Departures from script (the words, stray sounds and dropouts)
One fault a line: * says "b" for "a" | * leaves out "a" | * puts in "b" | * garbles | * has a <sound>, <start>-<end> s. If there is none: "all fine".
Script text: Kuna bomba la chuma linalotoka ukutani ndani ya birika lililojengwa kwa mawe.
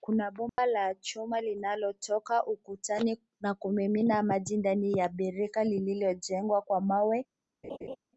* has a dropout, 0.5-0.6 s
* puts in "na kumimina maji"
* has a laugh, 7.6-8.0 s